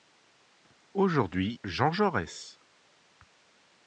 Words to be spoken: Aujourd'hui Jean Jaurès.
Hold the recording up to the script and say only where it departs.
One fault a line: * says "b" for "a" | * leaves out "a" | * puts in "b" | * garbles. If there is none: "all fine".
all fine